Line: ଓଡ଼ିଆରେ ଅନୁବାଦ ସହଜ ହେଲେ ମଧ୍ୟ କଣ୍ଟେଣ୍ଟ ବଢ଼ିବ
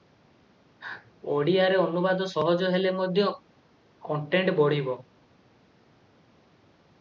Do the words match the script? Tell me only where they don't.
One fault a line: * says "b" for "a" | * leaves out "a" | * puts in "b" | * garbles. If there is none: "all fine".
all fine